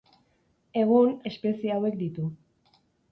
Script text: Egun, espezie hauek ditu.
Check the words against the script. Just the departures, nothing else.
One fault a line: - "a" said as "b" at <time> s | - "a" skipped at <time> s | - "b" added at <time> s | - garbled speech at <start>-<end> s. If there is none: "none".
none